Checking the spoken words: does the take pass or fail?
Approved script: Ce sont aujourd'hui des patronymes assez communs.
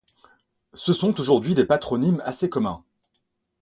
pass